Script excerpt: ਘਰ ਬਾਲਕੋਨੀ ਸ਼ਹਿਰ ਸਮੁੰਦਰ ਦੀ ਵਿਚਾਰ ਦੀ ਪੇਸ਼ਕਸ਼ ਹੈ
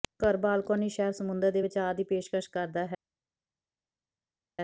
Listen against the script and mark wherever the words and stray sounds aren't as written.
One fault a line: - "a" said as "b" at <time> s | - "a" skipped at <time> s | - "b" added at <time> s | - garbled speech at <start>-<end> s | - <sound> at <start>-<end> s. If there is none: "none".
- "ਦੀ" said as "ਦੇ" at 1.5 s
- "ਕਰਦਾ" added at 2.5 s